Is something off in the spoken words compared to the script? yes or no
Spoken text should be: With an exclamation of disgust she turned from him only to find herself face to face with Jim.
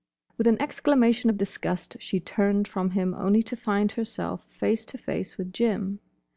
no